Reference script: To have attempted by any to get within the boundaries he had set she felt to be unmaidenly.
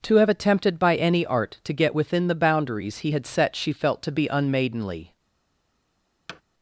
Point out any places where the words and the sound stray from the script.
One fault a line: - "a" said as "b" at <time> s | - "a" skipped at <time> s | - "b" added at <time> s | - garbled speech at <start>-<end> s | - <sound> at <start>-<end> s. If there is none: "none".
- "art" added at 1.2 s
- thud at 6.3-6.4 s